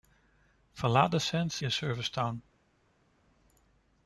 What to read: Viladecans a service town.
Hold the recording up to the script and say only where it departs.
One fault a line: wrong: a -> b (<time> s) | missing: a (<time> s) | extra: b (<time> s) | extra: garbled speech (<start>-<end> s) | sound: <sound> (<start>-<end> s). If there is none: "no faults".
no faults